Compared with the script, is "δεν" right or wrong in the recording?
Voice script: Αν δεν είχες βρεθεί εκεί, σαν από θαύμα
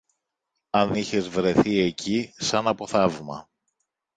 wrong